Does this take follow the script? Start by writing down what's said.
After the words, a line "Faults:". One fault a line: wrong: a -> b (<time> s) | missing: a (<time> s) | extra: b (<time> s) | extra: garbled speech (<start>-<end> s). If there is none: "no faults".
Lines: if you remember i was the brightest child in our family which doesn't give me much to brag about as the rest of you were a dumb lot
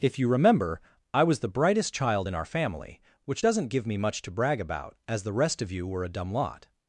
if you remember i was the brightest child in our family which doesn't give me much to brag about as the rest of you were a dumb lot
Faults:
no faults